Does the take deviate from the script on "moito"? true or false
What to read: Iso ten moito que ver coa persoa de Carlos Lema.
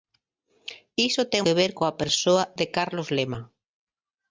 true